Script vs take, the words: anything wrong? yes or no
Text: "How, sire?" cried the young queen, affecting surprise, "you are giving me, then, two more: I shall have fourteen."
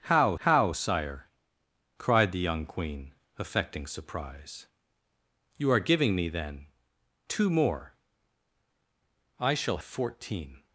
yes